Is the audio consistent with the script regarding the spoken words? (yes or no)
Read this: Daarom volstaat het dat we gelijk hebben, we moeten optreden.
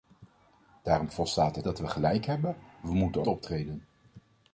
yes